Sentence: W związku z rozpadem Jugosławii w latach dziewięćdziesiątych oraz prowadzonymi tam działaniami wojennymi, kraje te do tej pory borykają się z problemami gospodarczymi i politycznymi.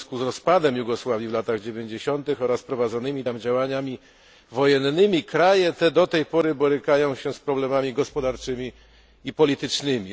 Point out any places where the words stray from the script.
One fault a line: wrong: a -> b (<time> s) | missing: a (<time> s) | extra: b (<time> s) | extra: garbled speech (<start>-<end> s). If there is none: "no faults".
no faults